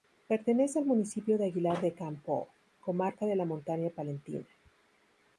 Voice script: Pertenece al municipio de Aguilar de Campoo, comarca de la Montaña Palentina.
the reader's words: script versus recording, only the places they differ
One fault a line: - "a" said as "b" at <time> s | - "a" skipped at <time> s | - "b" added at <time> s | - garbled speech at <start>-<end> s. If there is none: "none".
none